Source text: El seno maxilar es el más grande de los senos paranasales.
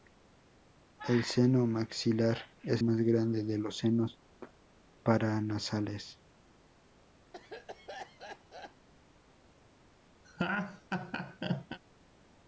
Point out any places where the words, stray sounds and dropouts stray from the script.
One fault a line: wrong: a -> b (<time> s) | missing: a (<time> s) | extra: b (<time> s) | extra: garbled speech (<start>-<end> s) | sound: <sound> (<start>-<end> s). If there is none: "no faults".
missing: el (2.8 s)
sound: cough (7.3-8.9 s)
sound: laugh (10.2-11.8 s)